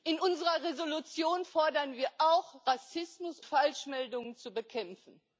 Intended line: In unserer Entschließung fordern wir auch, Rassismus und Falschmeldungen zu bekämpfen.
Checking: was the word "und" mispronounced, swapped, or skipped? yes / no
yes